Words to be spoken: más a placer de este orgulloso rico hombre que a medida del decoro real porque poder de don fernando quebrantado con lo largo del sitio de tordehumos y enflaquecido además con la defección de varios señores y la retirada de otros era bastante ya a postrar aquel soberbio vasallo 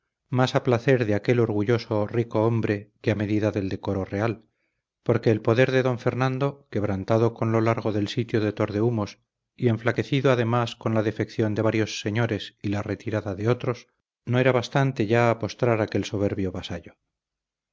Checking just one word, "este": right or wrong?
wrong